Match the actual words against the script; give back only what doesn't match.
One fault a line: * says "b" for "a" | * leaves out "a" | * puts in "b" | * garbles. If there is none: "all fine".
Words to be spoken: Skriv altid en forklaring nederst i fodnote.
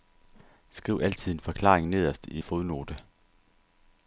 all fine